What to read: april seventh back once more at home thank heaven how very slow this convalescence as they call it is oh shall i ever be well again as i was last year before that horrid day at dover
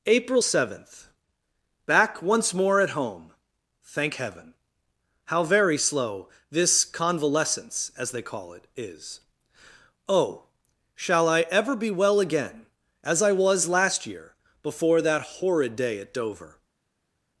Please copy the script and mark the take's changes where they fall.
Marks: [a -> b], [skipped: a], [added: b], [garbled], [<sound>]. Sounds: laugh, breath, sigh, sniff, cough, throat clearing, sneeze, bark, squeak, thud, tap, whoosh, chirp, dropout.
april seventh back once more at home thank heaven how very slow this convalescence as they call it is oh shall i ever be well again as i was last year before that horrid day at dover